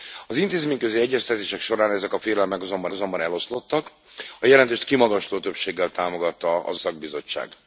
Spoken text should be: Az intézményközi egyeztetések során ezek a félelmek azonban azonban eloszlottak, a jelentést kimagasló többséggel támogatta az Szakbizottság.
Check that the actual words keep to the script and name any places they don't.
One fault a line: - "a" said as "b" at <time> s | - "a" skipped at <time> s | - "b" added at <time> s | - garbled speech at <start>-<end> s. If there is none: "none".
none